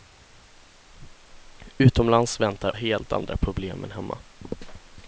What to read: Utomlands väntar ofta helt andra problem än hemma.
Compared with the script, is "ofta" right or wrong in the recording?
wrong